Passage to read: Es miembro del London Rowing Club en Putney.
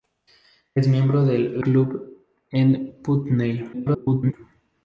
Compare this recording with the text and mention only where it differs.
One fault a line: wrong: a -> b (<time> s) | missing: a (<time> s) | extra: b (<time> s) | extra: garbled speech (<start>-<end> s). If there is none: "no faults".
missing: London Rowing (1.6 s)
extra: garbled speech (3.7-4.3 s)